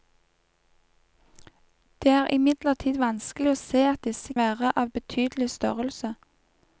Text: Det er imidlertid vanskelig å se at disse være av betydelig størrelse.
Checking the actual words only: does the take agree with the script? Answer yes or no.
yes